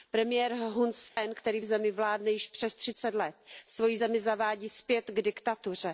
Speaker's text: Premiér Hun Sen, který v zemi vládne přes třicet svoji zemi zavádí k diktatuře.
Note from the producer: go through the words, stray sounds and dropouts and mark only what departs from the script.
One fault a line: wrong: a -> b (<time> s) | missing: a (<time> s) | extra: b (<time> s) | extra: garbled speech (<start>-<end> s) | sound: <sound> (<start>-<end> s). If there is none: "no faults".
sound: dropout (1.1-1.2 s)
extra: již (2.3 s)
extra: let (3.1 s)
extra: zpět (4.7 s)